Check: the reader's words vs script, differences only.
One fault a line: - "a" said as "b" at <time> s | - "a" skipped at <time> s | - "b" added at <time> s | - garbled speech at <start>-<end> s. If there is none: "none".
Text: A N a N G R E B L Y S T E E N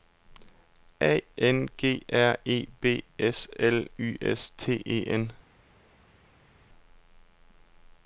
- "a N" skipped at 1.7 s
- "S" added at 3.2 s
- "E" skipped at 5.0 s